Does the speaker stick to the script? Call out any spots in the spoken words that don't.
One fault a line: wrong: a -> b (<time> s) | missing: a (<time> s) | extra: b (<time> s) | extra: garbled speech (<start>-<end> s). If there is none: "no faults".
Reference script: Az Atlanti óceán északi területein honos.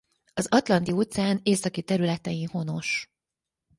no faults